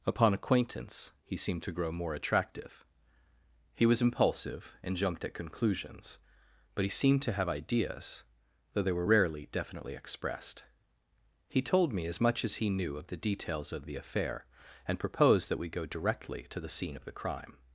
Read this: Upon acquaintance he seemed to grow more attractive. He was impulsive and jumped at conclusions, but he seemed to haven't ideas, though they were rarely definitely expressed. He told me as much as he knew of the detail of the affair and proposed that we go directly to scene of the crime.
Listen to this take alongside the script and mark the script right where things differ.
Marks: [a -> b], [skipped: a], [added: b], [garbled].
Upon acquaintance he seemed to grow more attractive. He was impulsive and jumped at conclusions, but he seemed to [haven't -> have] ideas, though they were rarely definitely expressed. He told me as much as he knew of the [detail -> details] of the affair and proposed that we go directly to [added: the] scene of the crime.